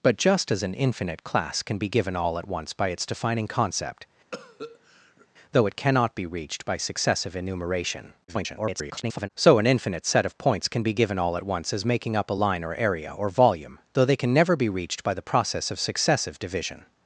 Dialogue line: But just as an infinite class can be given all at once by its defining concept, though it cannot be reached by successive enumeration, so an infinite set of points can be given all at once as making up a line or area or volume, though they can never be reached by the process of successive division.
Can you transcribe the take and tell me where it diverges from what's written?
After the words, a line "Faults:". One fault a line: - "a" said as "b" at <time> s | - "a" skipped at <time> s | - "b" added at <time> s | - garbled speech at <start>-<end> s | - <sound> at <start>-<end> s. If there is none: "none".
But just as an infinite class can be given all at once by its defining concept, though it cannot be reached by successive enumeration, [garbled] so an infinite set of points can be given all at once as making up a line or area or volume, though they can never be reached by the process of successive division.
Faults:
- cough at 4.3-5.3 s
- garbled speech at 8.3-9.3 s